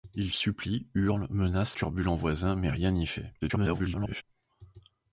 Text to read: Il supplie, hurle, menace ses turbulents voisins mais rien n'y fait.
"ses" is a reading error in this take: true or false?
true